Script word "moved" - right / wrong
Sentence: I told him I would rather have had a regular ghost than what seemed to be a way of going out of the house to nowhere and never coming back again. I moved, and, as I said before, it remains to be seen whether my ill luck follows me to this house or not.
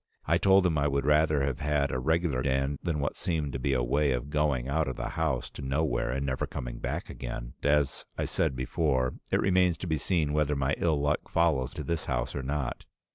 wrong